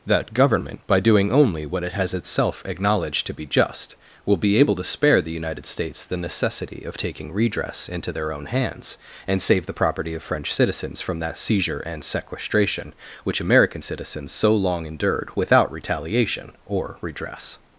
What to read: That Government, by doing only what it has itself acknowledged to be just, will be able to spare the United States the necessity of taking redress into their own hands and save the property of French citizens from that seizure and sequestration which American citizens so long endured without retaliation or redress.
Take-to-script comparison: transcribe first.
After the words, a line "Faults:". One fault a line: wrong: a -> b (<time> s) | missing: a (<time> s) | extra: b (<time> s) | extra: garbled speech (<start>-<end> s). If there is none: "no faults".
That Government, by doing only what it has itself acknowledged to be just, will be able to spare the United States the necessity of taking redress into their own hands and save the property of French citizens from that seizure and sequestration which American citizens so long endured without retaliation or redress.
Faults:
no faults